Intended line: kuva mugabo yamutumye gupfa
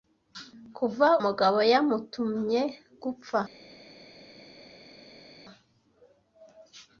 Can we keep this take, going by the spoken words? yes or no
yes